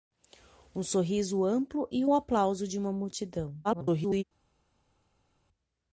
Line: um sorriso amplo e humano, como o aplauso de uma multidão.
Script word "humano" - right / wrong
wrong